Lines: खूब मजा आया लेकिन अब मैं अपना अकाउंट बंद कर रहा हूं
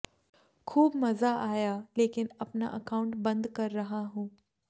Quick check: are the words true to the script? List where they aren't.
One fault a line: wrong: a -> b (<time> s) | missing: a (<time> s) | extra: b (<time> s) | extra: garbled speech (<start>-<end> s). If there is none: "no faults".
missing: अब मैं (2.3 s)